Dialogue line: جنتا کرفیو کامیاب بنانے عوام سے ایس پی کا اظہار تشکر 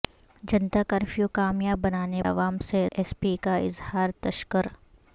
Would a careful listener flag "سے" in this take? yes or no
no